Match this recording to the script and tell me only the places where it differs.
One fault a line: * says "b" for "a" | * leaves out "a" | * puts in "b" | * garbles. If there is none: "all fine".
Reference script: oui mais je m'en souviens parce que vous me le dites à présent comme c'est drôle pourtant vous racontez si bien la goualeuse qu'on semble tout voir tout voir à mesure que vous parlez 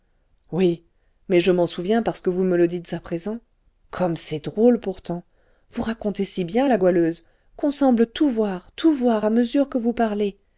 all fine